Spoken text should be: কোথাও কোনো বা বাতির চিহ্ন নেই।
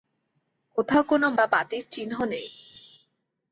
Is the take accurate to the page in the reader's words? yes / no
yes